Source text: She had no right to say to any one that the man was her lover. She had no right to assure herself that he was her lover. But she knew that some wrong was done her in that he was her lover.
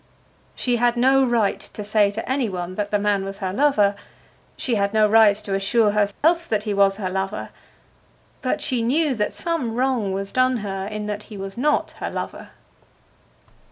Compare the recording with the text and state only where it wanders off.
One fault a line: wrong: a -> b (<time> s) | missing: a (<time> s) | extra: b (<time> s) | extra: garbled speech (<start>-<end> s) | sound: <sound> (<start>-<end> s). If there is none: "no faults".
sound: dropout (6.1-6.2 s)
extra: not (11.6 s)